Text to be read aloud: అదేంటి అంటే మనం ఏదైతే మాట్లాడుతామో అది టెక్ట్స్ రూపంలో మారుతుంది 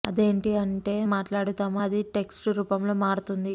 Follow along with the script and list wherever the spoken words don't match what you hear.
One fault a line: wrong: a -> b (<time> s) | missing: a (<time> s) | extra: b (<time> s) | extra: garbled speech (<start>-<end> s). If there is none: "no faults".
missing: మనం ఏదైతే (0.9 s)